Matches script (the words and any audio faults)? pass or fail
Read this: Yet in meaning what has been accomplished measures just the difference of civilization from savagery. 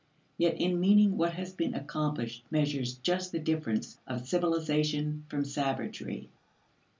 pass